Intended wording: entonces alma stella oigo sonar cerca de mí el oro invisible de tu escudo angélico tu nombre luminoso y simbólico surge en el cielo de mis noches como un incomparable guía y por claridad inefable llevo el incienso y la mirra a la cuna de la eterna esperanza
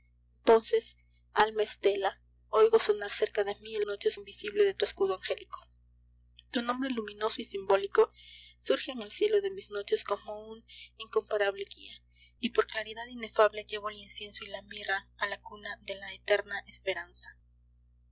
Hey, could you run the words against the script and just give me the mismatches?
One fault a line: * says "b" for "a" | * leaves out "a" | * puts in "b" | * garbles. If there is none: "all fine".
* says "noches" for "oro"